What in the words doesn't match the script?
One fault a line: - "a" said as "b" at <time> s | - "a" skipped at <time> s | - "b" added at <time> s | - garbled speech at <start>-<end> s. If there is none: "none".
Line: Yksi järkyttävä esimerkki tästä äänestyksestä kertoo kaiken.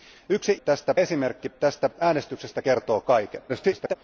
- "järkyttävä" said as "tästä" at 0.5 s
- garbled speech at 3.5-4.0 s